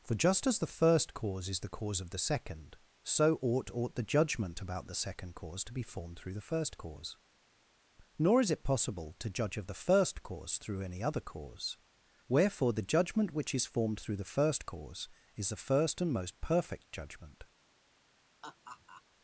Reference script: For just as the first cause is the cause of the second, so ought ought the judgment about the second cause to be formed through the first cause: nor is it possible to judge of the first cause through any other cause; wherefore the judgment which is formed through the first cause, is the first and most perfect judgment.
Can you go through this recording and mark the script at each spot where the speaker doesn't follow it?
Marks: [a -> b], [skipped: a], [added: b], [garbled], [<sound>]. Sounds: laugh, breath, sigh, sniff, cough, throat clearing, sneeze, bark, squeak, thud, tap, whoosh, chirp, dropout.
For just as the first cause is the cause of the second, so ought ought the judgment about the second cause to be formed through the first cause: nor is it possible to judge of the first cause through any other cause; wherefore the judgment which is formed through the first cause, is the first and most perfect judgment. [laugh]